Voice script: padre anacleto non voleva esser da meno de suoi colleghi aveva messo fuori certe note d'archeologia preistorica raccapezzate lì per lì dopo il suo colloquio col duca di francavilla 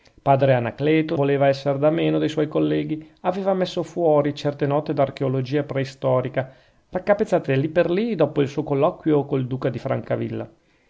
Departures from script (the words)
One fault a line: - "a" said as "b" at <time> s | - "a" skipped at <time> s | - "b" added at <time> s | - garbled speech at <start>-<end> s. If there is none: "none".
- "non" skipped at 1.1 s